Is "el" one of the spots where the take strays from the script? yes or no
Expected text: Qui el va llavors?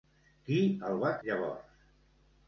no